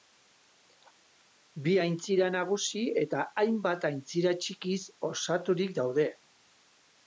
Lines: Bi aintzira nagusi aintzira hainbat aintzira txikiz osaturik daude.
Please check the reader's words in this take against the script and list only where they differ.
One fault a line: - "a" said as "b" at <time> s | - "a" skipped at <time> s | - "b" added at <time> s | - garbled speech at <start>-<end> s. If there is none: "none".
- "aintzira" said as "eta" at 3.0 s